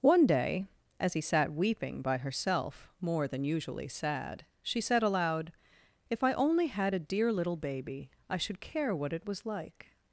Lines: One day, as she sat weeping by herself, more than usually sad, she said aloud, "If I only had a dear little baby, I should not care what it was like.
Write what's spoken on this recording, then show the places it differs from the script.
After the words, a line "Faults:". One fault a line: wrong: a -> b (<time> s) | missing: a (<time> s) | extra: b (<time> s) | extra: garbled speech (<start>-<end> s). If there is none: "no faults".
One day, as he sat weeping by herself, more than usually sad, she said aloud, "If I only had a dear little baby, I should care what it was like.
Faults:
wrong: she -> he (1.1 s)
missing: not (8.6 s)